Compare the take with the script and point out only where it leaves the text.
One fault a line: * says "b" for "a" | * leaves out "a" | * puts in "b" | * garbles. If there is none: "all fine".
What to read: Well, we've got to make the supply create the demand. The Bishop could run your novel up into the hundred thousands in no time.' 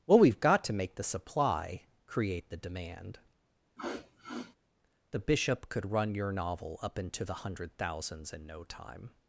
all fine